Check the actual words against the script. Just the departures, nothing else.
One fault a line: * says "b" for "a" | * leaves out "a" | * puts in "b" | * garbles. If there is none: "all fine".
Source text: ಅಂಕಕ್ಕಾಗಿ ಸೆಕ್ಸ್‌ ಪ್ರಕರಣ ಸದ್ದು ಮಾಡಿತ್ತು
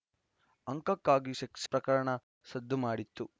all fine